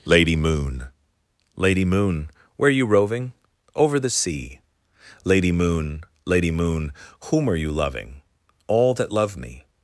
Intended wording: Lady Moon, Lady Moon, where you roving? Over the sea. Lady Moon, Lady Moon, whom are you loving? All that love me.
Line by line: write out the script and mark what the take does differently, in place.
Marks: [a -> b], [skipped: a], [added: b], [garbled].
Lady Moon, Lady Moon, where you roving? Over the sea. Lady Moon, Lady Moon, whom are you loving? All that love me.